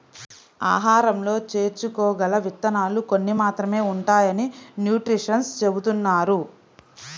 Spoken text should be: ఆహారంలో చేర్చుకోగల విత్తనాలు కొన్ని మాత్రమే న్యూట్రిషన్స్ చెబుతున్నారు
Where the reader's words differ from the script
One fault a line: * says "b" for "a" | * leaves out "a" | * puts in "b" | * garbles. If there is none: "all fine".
* puts in "ఉంటాయని"